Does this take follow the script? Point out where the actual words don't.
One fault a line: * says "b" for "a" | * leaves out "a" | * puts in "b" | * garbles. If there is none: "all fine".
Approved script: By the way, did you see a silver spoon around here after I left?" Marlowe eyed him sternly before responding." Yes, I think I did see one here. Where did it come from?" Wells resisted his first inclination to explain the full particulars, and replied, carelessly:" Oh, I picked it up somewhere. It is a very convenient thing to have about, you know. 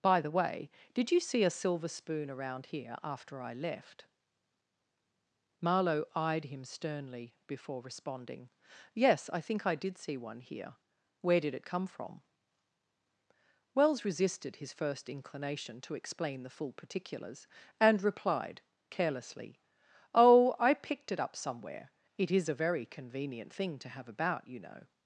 all fine